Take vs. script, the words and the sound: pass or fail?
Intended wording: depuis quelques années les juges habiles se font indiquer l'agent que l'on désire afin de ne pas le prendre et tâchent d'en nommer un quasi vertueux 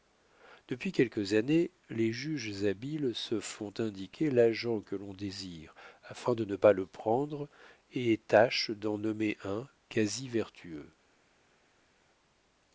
pass